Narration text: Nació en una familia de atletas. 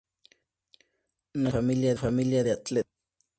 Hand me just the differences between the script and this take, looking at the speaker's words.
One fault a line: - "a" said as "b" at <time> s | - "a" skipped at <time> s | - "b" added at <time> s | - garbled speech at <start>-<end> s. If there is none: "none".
none